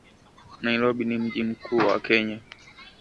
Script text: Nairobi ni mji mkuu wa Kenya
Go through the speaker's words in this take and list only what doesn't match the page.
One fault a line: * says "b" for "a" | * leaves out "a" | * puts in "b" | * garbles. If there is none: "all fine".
all fine